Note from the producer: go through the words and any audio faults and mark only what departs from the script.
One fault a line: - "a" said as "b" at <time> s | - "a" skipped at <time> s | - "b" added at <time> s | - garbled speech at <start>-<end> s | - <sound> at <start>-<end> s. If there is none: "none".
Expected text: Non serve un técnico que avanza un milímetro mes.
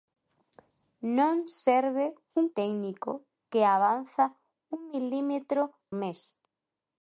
none